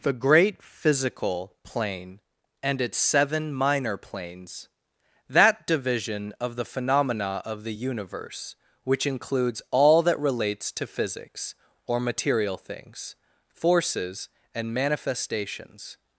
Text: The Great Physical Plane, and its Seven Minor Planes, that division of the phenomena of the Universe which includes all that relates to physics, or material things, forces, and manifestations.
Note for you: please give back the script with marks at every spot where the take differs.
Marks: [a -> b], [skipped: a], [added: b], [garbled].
The Great Physical Plane, and its Seven Minor Planes, that division of the phenomena of the Universe which includes all that relates to physics, or material things, forces, and manifestations.